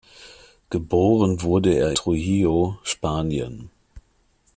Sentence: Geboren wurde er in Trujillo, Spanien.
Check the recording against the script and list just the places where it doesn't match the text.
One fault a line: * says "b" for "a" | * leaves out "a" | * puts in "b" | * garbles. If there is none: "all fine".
* leaves out "in"